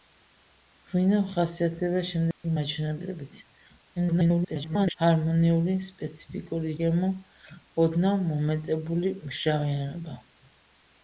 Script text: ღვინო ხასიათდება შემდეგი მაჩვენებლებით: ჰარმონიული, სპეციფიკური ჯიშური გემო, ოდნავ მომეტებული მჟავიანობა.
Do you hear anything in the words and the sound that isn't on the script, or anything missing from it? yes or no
yes